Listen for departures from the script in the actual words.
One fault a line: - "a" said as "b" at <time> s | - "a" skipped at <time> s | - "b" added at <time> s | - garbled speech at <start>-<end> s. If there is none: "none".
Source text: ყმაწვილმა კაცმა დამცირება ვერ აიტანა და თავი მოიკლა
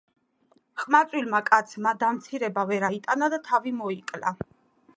none